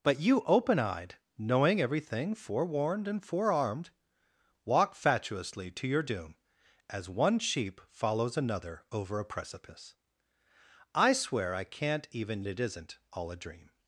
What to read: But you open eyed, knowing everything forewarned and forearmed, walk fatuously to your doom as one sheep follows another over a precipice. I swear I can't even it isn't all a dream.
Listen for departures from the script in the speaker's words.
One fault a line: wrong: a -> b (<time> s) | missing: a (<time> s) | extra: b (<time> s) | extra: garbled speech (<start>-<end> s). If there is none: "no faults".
no faults